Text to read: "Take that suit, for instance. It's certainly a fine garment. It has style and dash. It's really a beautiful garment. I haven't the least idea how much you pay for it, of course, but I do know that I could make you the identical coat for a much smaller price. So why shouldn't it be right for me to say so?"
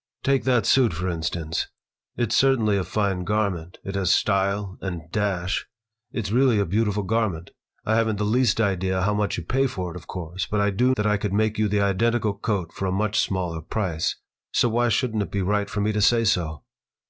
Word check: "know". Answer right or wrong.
wrong